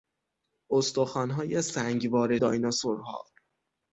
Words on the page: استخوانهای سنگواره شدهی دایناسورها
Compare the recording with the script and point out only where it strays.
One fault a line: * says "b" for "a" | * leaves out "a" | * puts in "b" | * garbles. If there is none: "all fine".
* leaves out "شدهی"